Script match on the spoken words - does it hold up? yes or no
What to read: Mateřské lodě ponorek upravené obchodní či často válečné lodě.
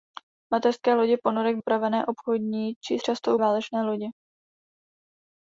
yes